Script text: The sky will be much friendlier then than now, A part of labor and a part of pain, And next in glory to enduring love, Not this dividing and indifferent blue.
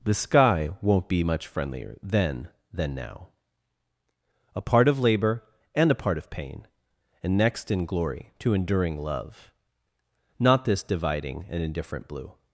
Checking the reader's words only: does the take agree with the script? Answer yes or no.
no